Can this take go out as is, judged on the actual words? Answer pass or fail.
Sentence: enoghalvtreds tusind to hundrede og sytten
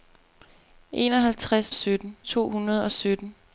fail